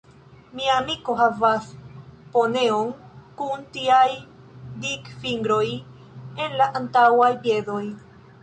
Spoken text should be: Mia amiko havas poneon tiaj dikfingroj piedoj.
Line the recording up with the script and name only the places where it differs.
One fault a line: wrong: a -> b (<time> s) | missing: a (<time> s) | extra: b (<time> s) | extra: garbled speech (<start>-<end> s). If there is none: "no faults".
extra: kun (3.4 s)
extra: en la antaŭaj (6.5 s)